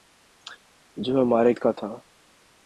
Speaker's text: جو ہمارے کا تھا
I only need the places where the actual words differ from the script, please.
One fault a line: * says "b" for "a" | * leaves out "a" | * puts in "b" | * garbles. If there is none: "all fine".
all fine